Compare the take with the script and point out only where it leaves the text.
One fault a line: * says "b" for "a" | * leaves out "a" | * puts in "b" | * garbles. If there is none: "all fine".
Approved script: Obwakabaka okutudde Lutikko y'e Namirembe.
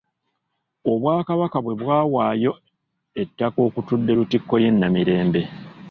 * puts in "bwe bwawaayo ettaka"